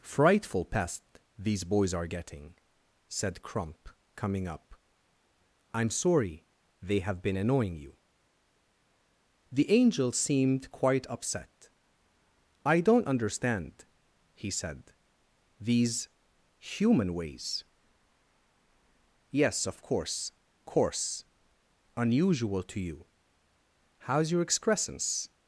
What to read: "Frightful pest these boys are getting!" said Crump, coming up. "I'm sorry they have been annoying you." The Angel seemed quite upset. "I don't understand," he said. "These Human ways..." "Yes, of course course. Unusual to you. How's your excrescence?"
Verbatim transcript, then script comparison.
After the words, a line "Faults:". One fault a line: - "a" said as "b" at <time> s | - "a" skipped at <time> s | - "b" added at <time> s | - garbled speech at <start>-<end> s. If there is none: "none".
"Frightful pest these boys are getting!" said Crump, coming up. "I'm sorry they have been annoying you." The Angel seemed quite upset. "I don't understand," he said. "These Human ways..." "Yes, of course course. Unusual to you. How's your excrescence?"
Faults:
none